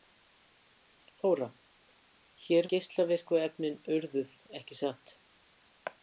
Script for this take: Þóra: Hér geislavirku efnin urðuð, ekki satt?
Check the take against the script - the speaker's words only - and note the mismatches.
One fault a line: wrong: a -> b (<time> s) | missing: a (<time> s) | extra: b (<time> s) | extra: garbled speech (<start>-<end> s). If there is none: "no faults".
no faults